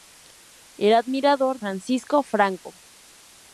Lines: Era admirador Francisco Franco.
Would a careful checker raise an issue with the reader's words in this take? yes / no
no